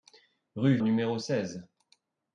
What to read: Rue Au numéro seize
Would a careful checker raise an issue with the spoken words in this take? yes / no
no